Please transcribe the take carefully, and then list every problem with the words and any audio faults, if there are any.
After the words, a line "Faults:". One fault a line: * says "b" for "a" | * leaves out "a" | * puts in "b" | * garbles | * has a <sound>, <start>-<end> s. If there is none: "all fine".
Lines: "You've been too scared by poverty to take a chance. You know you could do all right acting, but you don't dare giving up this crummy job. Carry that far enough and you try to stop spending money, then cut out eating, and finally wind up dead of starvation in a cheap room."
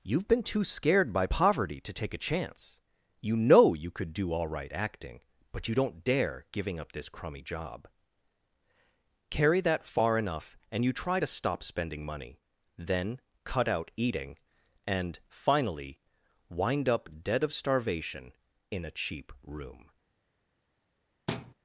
"You've been too scared by poverty to take a chance. You know you could do all right acting, but you don't dare giving up this crummy job. Carry that far enough and you try to stop spending money, then cut out eating, and finally wind up dead of starvation in a cheap room."
Faults:
* has a thud, 21.3-21.5 s